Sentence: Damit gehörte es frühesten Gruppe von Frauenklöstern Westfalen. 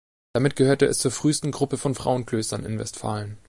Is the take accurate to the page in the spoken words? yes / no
no